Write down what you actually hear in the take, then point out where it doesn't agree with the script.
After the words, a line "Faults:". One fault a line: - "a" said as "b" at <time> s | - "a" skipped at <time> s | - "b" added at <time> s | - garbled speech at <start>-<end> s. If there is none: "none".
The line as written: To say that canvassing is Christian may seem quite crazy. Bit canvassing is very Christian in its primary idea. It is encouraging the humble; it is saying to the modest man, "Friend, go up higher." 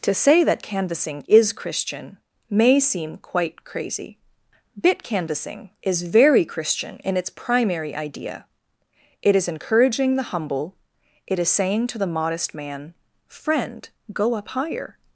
To say that canvassing is Christian may seem quite crazy. Bit canvassing is very Christian in its primary idea. It is encouraging the humble; it is saying to the modest man, "Friend, go up higher."
Faults:
none